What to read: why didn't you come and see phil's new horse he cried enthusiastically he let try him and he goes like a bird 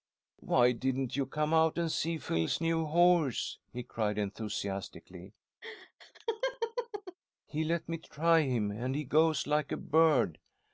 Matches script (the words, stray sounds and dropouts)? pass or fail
fail